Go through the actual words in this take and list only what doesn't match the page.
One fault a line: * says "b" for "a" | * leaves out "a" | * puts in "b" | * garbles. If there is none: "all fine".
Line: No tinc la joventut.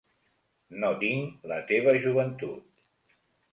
* puts in "teva"